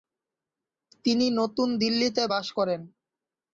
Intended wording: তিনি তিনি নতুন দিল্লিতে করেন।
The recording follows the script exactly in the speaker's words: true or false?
false